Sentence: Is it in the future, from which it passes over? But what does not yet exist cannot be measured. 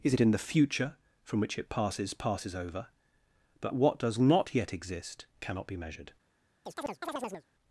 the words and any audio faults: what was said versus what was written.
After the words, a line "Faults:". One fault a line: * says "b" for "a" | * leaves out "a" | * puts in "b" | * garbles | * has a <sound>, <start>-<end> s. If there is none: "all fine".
Is it in the future, from which it passes passes over? But what does not yet exist cannot be measured.
Faults:
* puts in "passes"
* has a chirp, 6.7-7.5 s